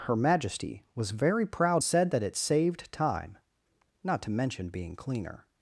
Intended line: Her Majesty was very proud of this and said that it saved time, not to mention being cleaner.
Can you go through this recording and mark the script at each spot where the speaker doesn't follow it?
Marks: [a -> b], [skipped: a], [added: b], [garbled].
Her Majesty was very proud [skipped: of this and] said that it saved time, not to mention being cleaner.